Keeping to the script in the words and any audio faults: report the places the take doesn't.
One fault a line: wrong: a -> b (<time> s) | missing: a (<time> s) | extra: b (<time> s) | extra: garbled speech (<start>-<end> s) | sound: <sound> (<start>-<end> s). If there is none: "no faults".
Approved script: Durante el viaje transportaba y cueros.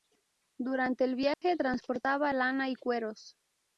sound: dropout (1.3-1.4 s)
extra: lana (2.3 s)